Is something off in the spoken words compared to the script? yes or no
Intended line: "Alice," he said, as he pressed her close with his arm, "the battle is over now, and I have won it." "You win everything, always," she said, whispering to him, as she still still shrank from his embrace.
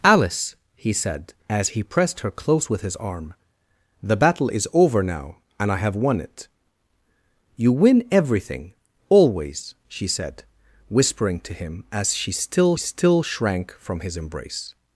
no